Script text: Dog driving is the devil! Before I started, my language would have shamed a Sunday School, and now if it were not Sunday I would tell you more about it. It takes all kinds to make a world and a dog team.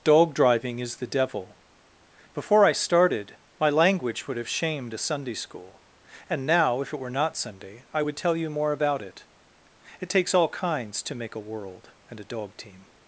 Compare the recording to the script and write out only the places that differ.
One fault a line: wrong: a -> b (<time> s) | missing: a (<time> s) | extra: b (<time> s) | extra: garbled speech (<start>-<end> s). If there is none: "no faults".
no faults